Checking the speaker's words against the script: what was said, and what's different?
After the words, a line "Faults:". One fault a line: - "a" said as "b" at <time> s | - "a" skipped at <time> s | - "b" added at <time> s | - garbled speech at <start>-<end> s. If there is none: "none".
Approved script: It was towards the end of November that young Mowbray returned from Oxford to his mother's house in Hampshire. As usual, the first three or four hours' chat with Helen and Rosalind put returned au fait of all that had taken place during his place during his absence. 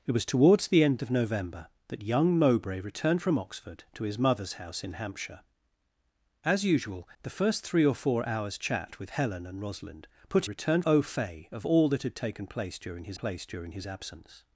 It was towards the end of November that young Mowbray returned from Oxford to his mother's house in Hampshire. As usual, the first three or four hours' chat with Helen and Rosalind put returned au fait of all that had taken place during his place during his absence.
Faults:
none